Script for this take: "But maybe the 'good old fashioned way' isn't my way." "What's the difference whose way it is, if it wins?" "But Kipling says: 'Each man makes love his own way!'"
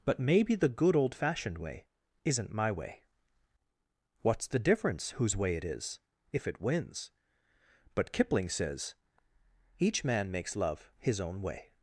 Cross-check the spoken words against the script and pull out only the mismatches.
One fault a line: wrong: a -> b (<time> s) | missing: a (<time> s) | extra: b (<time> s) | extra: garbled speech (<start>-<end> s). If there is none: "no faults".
no faults